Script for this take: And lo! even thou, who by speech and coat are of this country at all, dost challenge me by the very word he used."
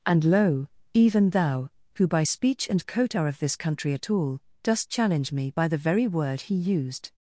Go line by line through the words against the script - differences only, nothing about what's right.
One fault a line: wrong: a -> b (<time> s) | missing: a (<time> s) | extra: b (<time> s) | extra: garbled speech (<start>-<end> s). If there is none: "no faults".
no faults